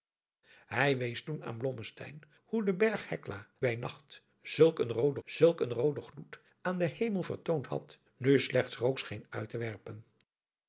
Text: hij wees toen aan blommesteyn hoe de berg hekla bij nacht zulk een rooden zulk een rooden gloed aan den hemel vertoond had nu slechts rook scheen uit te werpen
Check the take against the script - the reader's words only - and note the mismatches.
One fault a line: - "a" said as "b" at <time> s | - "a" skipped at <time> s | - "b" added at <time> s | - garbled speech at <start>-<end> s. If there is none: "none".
none